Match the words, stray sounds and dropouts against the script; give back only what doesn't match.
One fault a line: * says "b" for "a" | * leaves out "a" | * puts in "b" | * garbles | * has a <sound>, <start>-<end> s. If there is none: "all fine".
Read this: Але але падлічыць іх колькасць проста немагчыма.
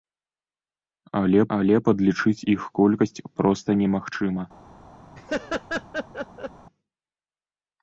* has a laugh, 5.1-6.5 s